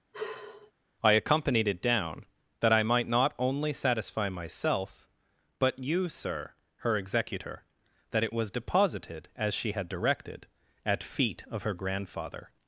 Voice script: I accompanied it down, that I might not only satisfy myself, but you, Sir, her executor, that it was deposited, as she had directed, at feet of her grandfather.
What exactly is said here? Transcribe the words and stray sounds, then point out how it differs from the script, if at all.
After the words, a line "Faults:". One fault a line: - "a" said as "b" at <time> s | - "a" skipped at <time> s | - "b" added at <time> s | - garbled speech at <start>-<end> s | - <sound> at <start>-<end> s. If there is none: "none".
I accompanied it down, that I might not only satisfy myself, but you, Sir, her executor, that it was deposited, as she had directed, at feet of her grandfather.
Faults:
- sigh at 0.1-0.7 s